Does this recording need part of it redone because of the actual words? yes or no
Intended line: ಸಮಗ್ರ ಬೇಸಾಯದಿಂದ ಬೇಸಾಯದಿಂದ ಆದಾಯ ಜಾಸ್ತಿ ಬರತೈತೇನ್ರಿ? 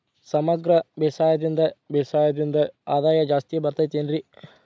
no